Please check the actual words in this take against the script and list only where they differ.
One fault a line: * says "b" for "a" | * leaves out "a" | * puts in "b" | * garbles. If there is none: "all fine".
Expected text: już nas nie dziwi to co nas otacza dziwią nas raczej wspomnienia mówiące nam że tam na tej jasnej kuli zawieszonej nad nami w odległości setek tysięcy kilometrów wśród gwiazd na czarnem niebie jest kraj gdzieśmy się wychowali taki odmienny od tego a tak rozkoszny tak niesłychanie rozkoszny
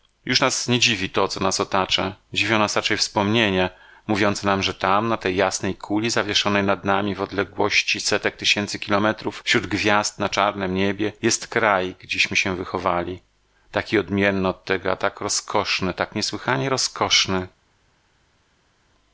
all fine